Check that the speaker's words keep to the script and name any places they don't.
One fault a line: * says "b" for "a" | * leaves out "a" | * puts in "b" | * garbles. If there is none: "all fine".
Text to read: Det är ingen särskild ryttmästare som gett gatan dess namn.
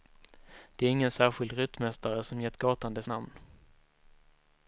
all fine